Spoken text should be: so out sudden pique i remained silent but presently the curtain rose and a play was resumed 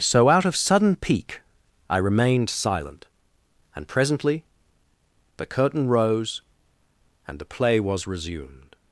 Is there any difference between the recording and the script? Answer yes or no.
yes